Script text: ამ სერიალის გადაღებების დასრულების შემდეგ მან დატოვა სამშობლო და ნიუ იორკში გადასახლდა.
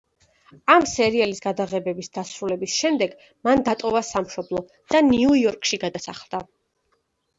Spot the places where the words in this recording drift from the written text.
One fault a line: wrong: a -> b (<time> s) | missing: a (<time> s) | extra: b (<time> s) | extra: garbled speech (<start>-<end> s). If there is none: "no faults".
no faults